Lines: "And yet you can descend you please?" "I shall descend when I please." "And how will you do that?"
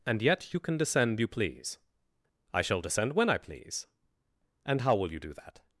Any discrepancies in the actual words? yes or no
no